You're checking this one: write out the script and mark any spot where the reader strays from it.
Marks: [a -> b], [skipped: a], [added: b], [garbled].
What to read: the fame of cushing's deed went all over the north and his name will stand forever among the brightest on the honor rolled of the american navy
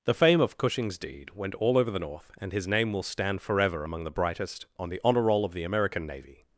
the fame of cushing's deed went all over the north and his name will stand forever among the brightest on the honor [rolled -> roll] of the american navy